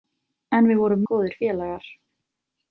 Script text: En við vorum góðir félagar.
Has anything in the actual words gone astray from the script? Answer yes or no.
no